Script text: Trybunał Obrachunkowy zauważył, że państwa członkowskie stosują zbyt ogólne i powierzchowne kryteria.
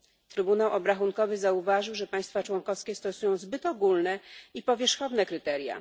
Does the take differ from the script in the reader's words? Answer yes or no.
no